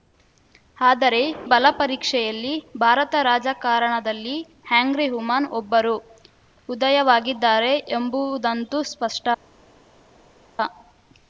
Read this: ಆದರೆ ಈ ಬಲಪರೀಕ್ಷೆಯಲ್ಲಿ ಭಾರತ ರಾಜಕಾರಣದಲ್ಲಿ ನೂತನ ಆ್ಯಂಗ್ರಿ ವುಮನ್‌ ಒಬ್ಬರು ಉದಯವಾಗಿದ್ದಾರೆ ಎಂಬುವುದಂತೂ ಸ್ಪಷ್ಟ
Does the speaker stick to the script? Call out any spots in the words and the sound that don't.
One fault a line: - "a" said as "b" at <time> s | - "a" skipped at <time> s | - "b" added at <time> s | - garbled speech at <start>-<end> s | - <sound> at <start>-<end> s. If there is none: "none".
- "ಈ" skipped at 1.2 s
- "ನೂತನ" skipped at 4.4 s